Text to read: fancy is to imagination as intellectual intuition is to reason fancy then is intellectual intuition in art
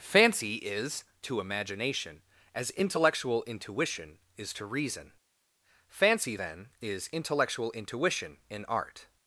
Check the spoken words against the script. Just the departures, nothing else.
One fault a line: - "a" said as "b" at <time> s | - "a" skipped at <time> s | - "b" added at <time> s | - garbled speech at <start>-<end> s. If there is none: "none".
none